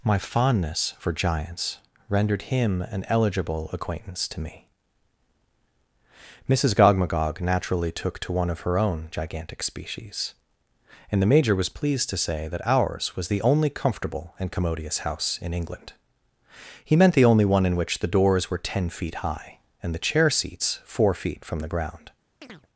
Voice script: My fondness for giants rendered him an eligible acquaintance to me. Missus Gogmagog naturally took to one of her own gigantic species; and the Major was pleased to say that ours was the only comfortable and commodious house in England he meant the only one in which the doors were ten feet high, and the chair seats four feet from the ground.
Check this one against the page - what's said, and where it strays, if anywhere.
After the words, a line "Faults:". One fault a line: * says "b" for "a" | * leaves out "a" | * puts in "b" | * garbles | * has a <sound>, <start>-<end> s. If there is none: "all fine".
My fondness for giants rendered him an eligible acquaintance to me. Missus Gogmagog naturally took to one of her own gigantic species; and the Major was pleased to say that ours was the only comfortable and commodious house in England he meant the only one in which the doors were ten feet high, and the chair seats four feet from the ground.
Faults:
* has a chirp, 22.4-22.7 s